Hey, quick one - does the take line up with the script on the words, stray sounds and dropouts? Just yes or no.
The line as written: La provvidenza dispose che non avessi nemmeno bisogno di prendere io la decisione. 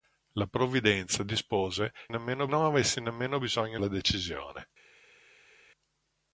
no